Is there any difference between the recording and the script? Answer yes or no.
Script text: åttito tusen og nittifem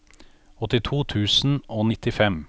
no